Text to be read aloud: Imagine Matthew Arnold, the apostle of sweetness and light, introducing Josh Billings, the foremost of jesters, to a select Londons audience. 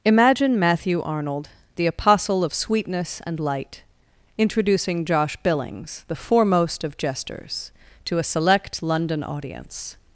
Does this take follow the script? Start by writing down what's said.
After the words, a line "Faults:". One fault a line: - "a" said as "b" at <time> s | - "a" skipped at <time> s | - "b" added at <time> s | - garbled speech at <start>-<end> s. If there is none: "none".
Imagine Matthew Arnold, the apostle of sweetness and light, introducing Josh Billings, the foremost of jesters, to a select London audience.
Faults:
- "Londons" said as "London" at 8.8 s